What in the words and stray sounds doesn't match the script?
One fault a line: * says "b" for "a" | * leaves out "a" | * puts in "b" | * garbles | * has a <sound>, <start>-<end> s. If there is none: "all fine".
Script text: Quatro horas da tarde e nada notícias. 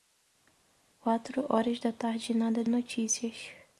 all fine